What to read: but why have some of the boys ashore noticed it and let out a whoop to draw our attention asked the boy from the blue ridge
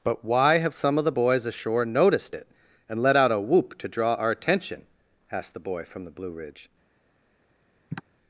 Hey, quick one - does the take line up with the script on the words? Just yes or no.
yes